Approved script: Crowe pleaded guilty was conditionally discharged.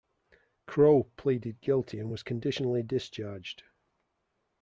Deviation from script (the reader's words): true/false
true